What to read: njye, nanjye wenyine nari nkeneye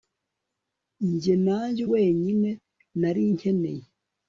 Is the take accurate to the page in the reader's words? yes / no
yes